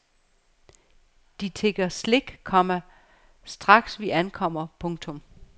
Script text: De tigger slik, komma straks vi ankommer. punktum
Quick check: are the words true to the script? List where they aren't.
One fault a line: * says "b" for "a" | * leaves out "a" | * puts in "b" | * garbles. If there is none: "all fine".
all fine